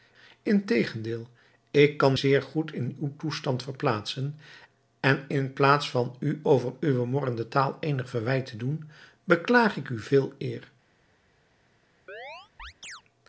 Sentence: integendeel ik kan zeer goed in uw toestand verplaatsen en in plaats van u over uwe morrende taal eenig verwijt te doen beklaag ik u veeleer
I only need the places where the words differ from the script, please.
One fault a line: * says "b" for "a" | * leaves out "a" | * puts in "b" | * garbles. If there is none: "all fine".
all fine